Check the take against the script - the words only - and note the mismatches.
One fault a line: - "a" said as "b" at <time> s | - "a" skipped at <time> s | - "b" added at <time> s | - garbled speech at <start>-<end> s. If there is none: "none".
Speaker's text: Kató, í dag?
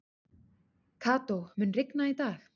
- "mun rigna" added at 1.6 s